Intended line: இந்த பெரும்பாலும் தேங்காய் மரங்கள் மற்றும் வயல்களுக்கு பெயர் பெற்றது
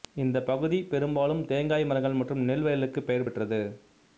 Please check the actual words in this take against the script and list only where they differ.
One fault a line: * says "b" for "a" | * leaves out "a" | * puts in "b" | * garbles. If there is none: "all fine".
* puts in "பகுதி"
* puts in "நெல்"